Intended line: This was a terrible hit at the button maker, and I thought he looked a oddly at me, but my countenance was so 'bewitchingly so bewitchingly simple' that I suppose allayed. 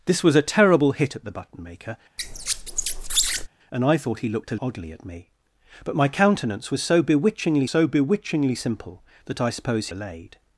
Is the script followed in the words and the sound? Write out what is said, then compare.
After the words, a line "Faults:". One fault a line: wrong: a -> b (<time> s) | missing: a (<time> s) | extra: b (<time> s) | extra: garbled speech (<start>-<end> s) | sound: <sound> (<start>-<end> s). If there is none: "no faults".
This was a terrible hit at the button maker, and I thought he looked a oddly at me, but my countenance was so 'bewitchingly so bewitchingly simple' that I suppose allayed.
Faults:
sound: squeak (2.2-3.5 s)